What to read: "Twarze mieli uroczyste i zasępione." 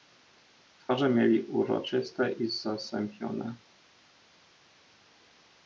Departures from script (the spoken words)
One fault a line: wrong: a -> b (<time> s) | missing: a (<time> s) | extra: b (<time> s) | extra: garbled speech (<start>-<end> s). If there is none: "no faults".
no faults